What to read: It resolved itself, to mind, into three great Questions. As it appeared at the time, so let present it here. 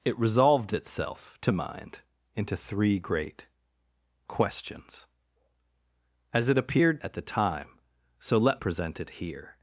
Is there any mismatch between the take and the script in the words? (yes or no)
no